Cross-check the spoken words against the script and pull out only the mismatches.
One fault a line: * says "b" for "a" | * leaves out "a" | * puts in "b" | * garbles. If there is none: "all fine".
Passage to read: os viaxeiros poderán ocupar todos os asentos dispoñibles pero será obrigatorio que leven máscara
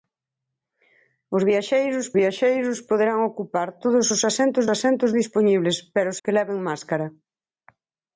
* puts in "viaxeiros"
* puts in "asentos"
* leaves out "será obrigatorio"